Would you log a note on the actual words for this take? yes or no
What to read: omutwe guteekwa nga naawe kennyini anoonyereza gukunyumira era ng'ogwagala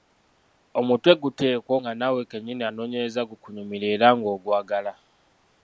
no